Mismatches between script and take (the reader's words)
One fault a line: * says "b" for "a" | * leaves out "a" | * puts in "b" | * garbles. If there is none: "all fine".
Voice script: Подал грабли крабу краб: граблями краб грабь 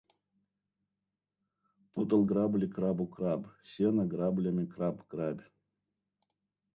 * puts in "сено"